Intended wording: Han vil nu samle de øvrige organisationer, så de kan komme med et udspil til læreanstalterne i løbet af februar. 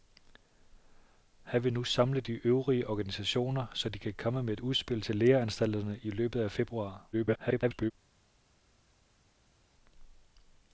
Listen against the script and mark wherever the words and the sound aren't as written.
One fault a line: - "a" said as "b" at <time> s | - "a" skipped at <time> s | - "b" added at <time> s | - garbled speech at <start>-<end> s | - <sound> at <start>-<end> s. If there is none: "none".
- garbled speech at 7.1-7.9 s